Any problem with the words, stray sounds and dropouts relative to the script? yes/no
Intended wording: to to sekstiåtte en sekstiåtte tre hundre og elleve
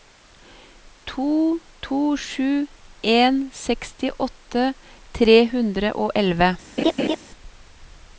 yes